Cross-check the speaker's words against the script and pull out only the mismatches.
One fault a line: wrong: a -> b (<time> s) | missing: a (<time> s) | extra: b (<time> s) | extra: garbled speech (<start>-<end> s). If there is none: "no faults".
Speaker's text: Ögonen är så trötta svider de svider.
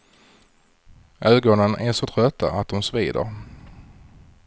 wrong: svider -> att (2.5 s)